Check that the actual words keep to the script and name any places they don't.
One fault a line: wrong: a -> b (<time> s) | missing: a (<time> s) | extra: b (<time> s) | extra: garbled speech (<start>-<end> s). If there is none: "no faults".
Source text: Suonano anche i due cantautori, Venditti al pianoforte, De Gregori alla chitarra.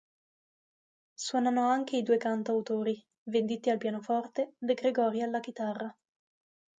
no faults